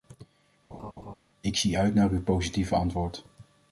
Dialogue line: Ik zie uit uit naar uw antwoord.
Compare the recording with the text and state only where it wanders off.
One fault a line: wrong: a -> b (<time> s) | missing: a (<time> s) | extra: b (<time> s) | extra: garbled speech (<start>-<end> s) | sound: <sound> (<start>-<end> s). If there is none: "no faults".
sound: laugh (0.7-1.1 s)
missing: uit (1.9 s)
extra: positieve (2.2 s)